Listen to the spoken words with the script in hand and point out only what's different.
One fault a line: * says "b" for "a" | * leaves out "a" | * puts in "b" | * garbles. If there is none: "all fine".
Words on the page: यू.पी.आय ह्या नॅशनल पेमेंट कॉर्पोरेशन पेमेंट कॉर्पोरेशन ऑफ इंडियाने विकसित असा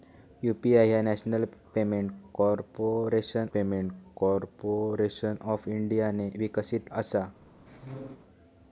all fine